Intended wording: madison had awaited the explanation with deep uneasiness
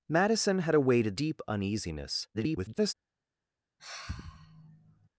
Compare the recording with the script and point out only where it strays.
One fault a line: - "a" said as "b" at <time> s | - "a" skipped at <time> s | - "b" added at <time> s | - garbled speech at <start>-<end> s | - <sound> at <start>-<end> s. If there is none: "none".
- "the explanation with" skipped at 1.2 s
- garbled speech at 2.3-2.9 s
- sigh at 3.8-5.1 s